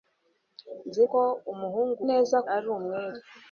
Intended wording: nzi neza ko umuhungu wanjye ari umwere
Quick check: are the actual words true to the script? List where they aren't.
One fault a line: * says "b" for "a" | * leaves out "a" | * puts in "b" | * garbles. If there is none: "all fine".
* leaves out "neza"
* says "neza" for "wanjye"